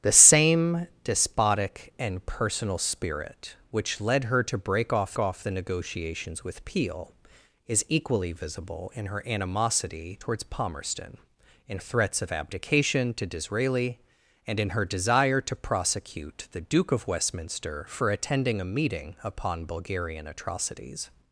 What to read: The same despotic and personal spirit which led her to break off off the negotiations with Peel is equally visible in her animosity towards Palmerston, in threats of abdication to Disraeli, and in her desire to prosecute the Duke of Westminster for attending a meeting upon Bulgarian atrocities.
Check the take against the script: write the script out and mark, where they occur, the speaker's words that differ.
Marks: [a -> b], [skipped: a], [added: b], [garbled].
The same despotic and personal spirit which led her to break off off the negotiations with Peel is equally visible in her animosity towards Palmerston, in threats of abdication to Disraeli, and in her desire to prosecute the Duke of Westminster for attending a meeting upon Bulgarian atrocities.